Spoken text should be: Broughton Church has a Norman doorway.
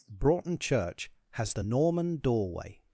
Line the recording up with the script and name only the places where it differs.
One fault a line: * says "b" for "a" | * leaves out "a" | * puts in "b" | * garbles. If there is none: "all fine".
* says "the" for "a"